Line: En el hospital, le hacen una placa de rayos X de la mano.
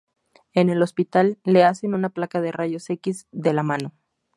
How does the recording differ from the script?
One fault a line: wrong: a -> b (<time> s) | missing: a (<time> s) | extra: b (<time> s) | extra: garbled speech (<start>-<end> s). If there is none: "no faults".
no faults